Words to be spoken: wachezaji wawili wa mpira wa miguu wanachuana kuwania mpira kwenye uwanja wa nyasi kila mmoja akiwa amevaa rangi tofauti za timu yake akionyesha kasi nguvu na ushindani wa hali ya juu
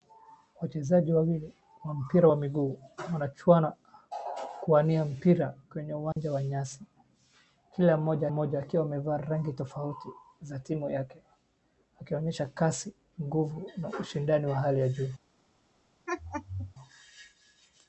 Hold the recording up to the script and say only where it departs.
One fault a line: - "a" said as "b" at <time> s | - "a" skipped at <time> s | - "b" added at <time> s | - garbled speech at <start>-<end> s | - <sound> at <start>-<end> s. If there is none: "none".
- dropout at 6.1-6.2 s
- "mmoja" added at 8.3 s
- laugh at 16.1-16.7 s